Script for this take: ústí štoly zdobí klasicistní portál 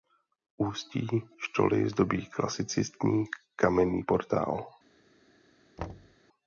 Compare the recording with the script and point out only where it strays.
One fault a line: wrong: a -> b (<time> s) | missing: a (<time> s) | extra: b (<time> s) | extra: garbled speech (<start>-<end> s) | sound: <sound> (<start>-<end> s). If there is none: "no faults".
extra: kamenný (3.6 s)
sound: thud (5.8-6.2 s)